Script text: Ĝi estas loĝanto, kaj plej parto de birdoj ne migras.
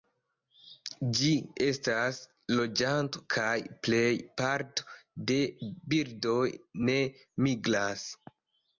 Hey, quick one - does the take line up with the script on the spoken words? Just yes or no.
yes